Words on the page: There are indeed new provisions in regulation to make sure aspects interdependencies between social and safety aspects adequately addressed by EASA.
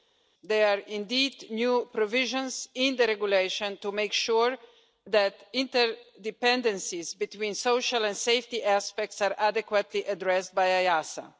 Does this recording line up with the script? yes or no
no